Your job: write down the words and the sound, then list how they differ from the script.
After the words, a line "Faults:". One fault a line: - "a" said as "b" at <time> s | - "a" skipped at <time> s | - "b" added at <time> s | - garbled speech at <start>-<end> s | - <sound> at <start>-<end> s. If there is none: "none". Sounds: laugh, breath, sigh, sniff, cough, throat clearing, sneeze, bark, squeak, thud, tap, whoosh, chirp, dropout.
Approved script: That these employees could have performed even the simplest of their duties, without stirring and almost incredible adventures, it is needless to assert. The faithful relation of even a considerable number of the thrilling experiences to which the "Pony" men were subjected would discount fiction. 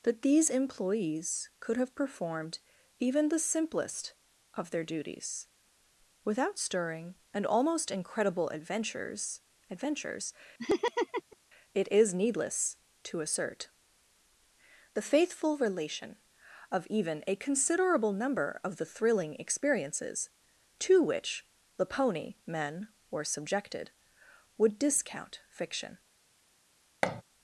That these employees could have performed even the simplest of their duties, without stirring and almost incredible adventures adventures, it is needless to assert. The faithful relation of even a considerable number of the thrilling experiences to which the "Pony" men were subjected would discount fiction.
Faults:
- "adventures" added at 9.7 s
- laugh at 10.6-11.4 s
- thud at 27.0-27.2 s